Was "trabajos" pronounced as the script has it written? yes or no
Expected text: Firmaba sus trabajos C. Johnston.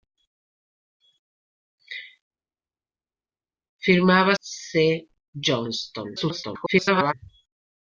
no